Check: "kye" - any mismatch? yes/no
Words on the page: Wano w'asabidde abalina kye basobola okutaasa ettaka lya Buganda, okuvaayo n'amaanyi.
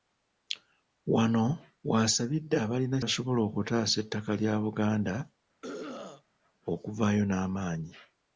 yes